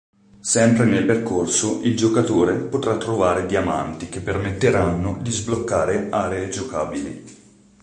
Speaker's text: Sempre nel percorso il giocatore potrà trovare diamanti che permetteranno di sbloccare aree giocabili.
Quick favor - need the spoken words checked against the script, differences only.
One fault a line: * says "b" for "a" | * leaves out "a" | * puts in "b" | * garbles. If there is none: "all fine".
all fine